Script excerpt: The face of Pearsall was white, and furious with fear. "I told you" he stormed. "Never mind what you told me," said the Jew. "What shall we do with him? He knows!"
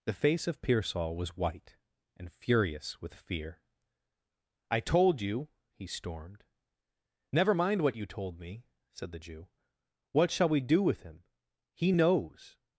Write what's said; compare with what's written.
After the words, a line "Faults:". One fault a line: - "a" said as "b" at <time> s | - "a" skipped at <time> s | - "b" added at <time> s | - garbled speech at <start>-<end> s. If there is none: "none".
The face of Pearsall was white, and furious with fear. "I told you" he stormed. "Never mind what you told me," said the Jew. "What shall we do with him? He knows!"
Faults:
none